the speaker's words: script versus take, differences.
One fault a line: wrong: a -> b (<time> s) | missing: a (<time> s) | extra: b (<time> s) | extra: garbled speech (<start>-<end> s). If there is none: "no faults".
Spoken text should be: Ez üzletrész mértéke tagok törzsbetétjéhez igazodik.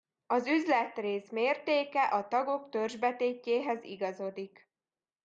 wrong: Ez -> Az (0.3 s)
extra: a (2.0 s)